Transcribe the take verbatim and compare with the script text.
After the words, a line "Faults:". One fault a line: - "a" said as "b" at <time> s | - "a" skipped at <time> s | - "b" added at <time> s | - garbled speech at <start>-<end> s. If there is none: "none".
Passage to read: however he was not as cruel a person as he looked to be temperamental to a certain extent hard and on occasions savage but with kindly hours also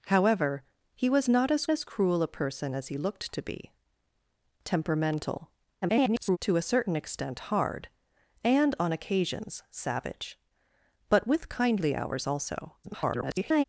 however he was not as as cruel a person as he looked to be temperamental [garbled] to a certain extent hard and on occasions savage but with kindly hours also [garbled]
Faults:
- "as" added at 1.7 s
- garbled speech at 5.8-6.4 s
- garbled speech at 12.8-13.6 s